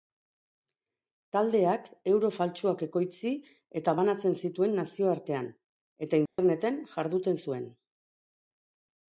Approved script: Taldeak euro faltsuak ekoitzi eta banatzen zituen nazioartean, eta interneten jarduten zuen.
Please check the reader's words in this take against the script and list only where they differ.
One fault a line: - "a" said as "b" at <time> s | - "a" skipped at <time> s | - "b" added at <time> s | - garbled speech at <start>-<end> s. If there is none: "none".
none